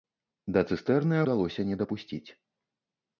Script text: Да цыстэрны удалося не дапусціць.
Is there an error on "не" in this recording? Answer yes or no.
no